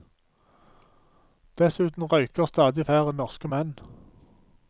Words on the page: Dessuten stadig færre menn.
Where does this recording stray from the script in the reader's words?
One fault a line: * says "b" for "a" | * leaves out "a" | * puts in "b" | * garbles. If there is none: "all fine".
* puts in "røyker"
* puts in "norske"